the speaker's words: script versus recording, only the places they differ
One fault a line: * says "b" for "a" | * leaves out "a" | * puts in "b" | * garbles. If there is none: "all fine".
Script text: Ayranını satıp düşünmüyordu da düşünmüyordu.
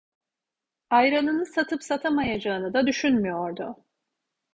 * says "satamayacağını" for "düşünmüyordu"